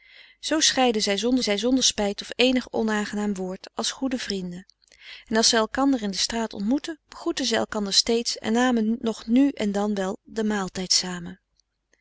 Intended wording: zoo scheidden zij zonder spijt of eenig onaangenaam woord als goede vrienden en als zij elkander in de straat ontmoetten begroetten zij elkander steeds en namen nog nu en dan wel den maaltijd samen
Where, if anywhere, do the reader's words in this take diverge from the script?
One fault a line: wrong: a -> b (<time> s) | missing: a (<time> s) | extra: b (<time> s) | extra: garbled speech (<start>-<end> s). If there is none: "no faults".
extra: zij zonder (1.4 s)